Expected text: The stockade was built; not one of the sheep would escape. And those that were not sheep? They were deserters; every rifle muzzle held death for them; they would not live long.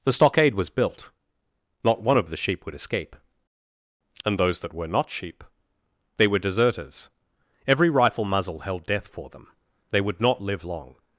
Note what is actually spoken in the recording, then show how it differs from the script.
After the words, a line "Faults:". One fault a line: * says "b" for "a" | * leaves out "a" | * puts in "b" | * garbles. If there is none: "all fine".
The stockade was built; not one of the sheep would escape. And those that were not sheep? They were deserters; every rifle muzzle held death for them; they would not live long.
Faults:
all fine